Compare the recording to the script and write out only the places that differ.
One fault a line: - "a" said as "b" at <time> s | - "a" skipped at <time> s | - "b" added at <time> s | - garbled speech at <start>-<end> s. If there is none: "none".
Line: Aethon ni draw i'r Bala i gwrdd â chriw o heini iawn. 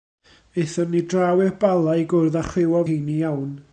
none